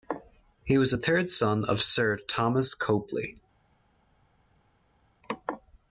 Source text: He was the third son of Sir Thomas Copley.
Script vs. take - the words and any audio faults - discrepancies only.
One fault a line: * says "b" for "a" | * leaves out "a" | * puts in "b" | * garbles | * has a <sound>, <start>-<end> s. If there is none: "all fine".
all fine